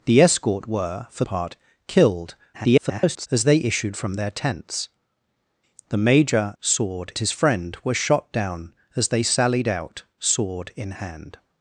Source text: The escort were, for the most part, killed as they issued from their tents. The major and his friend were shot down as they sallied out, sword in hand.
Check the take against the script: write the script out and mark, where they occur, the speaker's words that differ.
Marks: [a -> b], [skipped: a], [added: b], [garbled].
The escort were, for [skipped: the most] part, killed [garbled] as they issued from their tents. The major [and -> sword] his friend were shot down as they sallied out, sword in hand.